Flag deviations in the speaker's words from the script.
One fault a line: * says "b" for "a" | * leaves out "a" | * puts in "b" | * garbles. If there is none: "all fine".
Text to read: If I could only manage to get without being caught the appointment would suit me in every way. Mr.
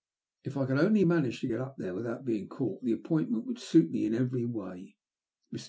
* puts in "up there"